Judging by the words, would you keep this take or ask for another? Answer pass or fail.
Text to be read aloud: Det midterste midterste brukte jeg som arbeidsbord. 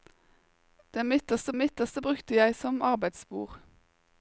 pass